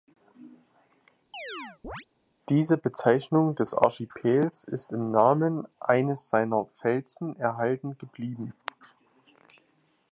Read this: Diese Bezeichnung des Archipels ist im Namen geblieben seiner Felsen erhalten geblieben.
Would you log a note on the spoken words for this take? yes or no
yes